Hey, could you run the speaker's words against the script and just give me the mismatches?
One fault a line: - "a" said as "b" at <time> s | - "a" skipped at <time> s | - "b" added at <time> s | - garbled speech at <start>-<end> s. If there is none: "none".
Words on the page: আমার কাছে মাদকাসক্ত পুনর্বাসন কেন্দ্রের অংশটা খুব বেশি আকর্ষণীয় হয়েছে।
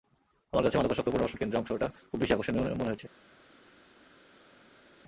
- "মনে" added at 2.7 s